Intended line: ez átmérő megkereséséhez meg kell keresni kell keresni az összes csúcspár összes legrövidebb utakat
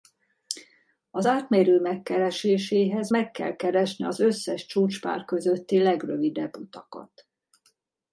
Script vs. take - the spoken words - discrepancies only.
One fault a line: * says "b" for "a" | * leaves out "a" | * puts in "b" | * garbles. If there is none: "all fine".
* says "az" for "ez"
* leaves out "kell keresni"
* says "közötti" for "összes"